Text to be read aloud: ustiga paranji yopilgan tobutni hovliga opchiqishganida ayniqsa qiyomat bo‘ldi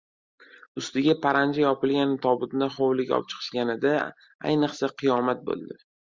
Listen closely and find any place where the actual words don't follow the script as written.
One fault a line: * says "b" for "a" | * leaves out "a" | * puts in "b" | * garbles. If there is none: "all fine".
all fine